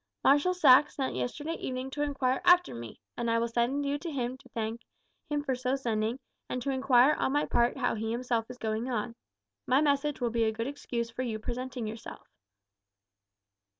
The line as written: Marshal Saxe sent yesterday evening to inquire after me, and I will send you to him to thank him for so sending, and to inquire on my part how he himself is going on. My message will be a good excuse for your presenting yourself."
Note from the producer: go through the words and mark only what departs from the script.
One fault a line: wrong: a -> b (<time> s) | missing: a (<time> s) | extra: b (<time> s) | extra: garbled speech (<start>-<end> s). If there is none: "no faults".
no faults